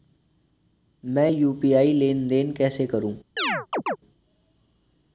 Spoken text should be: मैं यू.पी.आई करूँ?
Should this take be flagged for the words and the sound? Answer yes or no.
yes